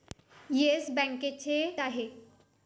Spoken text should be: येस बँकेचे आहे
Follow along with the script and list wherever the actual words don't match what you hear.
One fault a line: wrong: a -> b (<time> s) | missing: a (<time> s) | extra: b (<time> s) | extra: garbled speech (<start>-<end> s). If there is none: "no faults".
no faults